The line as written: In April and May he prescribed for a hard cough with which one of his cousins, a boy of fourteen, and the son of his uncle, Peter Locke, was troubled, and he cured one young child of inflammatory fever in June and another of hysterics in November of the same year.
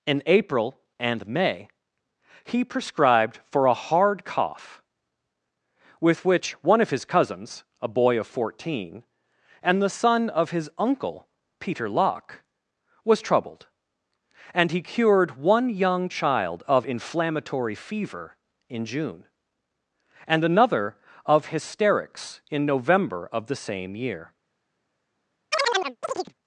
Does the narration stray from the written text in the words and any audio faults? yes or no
yes